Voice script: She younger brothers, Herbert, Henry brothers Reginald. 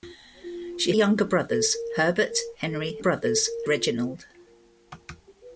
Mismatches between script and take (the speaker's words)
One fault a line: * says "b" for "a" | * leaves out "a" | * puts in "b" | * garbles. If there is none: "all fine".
all fine